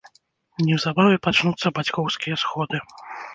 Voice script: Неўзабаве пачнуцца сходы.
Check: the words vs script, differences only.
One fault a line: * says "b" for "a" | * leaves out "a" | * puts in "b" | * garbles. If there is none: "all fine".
* puts in "бацькоўскія"